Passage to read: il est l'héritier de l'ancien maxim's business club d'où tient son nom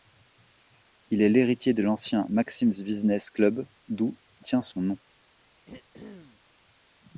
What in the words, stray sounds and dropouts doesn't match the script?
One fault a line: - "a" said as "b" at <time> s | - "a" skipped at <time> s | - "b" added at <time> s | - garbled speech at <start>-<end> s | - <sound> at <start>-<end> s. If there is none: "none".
- throat clearing at 5.7-6.4 s